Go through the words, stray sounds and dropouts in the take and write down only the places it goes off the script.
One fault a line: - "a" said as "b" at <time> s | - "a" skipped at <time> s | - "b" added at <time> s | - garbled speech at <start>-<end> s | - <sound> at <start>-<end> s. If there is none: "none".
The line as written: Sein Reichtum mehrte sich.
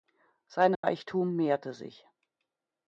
- dropout at 0.7-0.8 s